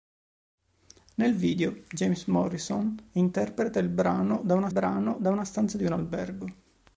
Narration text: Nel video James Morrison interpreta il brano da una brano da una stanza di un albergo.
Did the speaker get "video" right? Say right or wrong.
right